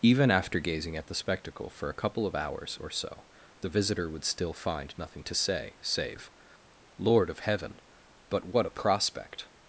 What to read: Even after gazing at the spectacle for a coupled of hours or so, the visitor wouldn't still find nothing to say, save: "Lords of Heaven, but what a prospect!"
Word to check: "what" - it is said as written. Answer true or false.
true